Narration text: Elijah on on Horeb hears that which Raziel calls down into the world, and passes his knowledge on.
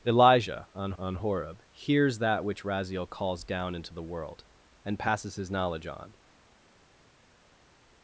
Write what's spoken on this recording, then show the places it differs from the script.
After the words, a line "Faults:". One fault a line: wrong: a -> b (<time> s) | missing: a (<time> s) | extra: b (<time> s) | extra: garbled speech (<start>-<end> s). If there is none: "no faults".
Elijah on on Horeb hears that which Raziel calls down into the world, and passes his knowledge on.
Faults:
no faults